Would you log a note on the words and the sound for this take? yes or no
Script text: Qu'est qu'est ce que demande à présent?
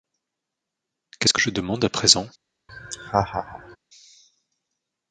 yes